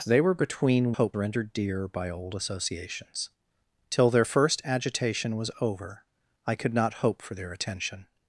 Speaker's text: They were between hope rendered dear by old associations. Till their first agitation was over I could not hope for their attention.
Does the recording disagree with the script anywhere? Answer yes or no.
no